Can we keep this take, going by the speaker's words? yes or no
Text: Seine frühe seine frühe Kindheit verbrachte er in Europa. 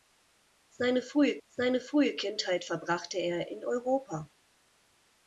yes